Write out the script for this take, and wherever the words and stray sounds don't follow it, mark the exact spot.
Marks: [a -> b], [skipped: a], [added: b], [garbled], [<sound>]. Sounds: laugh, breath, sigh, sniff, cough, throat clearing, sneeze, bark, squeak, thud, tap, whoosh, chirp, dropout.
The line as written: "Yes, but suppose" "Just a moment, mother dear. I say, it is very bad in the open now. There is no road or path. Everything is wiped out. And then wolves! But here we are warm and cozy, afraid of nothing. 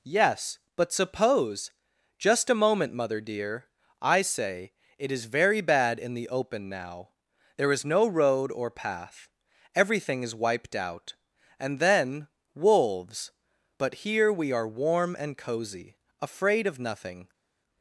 "Yes, but suppose" "Just a moment, mother dear. I say, it is very bad in the open now. There is no road or path. Everything is wiped out. And then wolves! But here we are warm and cozy, afraid of nothing.